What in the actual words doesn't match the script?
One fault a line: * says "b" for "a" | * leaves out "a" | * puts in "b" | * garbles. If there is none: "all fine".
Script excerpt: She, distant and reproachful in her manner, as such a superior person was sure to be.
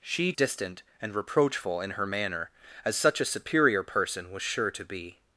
all fine